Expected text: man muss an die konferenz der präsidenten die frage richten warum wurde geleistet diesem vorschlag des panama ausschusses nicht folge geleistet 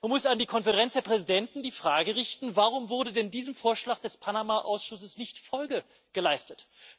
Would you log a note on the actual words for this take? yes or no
yes